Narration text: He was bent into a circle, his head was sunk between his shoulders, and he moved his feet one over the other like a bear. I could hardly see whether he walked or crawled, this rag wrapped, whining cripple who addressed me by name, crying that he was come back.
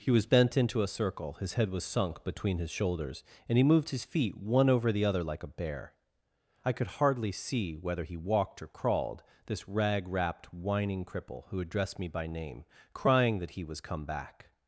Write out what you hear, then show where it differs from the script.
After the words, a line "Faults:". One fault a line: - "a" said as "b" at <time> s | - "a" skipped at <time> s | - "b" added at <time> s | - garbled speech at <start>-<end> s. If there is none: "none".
He was bent into a circle, his head was sunk between his shoulders, and he moved his feet one over the other like a bear. I could hardly see whether he walked or crawled, this rag wrapped, whining cripple who addressed me by name, crying that he was come back.
Faults:
none